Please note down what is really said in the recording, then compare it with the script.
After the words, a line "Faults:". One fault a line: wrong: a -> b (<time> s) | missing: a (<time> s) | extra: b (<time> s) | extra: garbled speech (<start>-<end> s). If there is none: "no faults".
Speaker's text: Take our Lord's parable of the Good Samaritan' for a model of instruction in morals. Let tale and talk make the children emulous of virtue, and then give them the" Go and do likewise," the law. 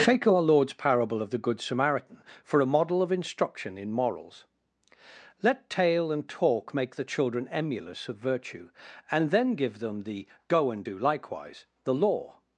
Take our Lord's parable of the Good Samaritan' for a model of instruction in morals. Let tale and talk make the children emulous of virtue, and then give them the" Go and do likewise," the law.
Faults:
no faults